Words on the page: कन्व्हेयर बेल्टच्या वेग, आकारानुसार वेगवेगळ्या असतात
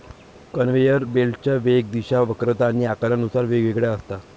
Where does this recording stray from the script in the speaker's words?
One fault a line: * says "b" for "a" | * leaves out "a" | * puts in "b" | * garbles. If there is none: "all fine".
* puts in "दिशा वक्रता आणि"